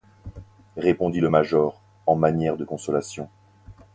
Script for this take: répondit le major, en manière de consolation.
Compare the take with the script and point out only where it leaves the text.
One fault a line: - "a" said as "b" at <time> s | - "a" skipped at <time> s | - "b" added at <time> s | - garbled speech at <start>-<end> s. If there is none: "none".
none